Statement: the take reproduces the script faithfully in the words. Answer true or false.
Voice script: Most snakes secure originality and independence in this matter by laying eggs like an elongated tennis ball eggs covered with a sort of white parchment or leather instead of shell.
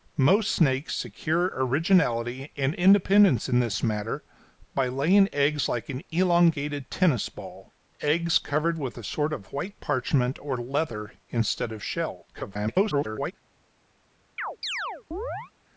false